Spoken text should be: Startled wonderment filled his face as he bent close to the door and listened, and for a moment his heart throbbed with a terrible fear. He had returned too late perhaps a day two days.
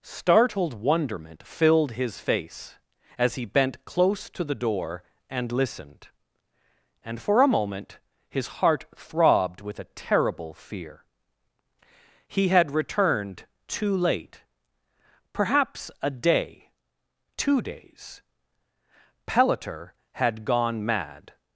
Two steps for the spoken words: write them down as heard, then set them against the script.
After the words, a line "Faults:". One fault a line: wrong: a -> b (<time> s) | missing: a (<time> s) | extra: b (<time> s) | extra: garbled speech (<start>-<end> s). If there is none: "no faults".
Startled wonderment filled his face as he bent close to the door and listened, and for a moment his heart throbbed with a terrible fear. He had returned too late perhaps a day two days. Pelliter had gone mad
Faults:
extra: Pelliter had gone mad (19.3 s)